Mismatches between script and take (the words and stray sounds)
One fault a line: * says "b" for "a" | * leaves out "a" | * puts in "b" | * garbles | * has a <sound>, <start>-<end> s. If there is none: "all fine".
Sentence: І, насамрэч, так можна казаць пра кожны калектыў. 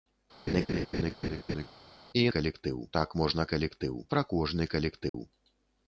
* has a laugh, 0.5-1.7 s
* says "калектыў" for "насамрэч"
* says "калектыў" for "казаць"
* has a dropout, 5.1-5.1 s